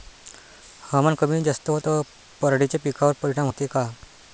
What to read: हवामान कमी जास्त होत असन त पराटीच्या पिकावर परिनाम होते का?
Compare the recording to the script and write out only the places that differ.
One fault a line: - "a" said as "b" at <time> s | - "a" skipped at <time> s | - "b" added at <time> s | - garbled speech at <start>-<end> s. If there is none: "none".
- "असन" skipped at 1.8 s